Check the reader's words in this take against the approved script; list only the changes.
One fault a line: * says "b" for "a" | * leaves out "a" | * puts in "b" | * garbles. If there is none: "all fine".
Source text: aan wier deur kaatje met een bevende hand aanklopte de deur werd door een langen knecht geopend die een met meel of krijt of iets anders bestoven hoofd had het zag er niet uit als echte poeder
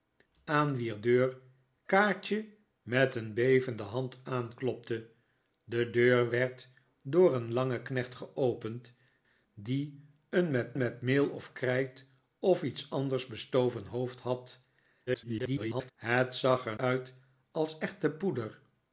* puts in "met"
* garbles
* leaves out "niet"